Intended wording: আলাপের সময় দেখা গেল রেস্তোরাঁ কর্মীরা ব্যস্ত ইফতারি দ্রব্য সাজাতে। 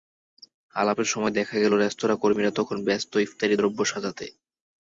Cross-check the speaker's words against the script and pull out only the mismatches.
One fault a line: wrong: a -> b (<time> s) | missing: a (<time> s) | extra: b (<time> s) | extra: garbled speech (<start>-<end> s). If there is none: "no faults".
extra: তখন (2.5 s)